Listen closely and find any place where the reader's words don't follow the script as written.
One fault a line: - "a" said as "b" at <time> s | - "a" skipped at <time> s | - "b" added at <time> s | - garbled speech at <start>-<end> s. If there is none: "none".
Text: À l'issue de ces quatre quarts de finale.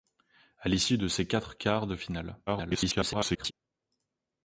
- garbled speech at 2.5-3.5 s